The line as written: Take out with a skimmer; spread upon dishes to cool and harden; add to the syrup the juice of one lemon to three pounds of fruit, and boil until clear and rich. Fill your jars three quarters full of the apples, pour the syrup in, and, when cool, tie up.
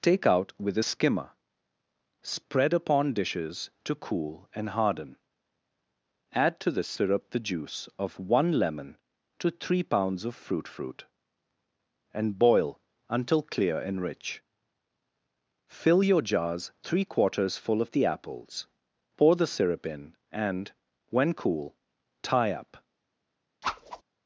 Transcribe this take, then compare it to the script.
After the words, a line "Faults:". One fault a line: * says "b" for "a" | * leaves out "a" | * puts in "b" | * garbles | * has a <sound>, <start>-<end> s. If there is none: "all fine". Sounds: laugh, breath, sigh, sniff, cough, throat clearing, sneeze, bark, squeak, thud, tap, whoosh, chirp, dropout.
Take out with a skimmer; spread upon dishes to cool and harden; add to the syrup the juice of one lemon to three pounds of fruit fruit, and boil until clear and rich. Fill your jars three quarters full of the apples, pour the syrup in, and, when cool, tie up.
Faults:
* puts in "fruit"
* has a whoosh, 23.6-24.0 s